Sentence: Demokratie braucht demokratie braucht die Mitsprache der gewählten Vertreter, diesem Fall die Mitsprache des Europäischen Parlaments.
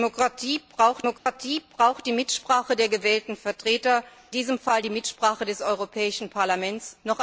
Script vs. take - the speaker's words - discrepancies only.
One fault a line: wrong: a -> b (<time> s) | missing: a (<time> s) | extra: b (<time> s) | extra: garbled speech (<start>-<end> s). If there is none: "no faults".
no faults